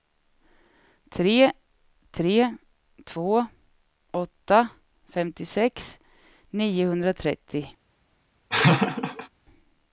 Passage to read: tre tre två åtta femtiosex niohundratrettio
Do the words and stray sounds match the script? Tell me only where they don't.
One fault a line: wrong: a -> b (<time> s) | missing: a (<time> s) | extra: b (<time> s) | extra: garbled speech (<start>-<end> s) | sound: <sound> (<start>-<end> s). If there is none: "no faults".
sound: laugh (8.5-9.3 s)